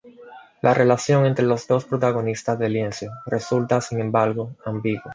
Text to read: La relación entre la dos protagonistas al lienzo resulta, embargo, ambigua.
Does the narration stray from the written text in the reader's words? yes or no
yes